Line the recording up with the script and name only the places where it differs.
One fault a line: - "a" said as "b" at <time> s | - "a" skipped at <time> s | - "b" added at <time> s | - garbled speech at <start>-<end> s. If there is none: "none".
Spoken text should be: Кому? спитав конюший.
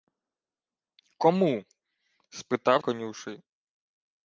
none